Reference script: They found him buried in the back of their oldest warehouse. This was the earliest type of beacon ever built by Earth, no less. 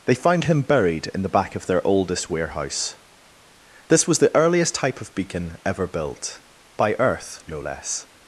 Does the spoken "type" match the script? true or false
true